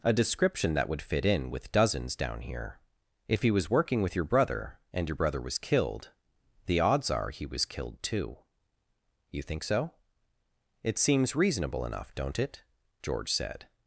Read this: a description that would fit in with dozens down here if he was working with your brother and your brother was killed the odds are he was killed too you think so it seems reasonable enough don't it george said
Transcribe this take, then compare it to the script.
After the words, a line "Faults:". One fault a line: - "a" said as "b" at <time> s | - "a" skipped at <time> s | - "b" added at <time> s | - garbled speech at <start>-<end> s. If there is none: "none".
a description that would fit in with dozens down here if he was working with your brother and your brother was killed the odds are he was killed too you think so it seems reasonable enough don't it george said
Faults:
none